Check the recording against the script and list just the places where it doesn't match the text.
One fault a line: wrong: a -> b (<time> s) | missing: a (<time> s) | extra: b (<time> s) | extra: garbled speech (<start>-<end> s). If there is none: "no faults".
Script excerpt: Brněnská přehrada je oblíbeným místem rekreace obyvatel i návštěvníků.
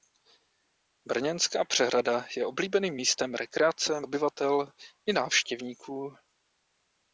no faults